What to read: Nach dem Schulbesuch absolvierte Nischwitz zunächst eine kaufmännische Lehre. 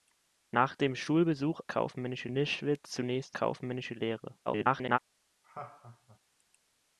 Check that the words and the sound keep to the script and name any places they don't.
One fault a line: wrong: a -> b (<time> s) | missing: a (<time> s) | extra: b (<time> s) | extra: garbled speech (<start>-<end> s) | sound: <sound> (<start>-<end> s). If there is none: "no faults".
wrong: absolvierte -> kaufmännische (1.6 s)
missing: eine (3.4 s)
extra: garbled speech (4.5-5.0 s)
sound: laugh (5.4-6.2 s)